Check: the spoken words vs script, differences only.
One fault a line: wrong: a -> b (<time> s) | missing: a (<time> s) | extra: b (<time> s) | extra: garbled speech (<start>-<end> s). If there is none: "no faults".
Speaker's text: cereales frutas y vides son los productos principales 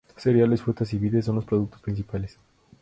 no faults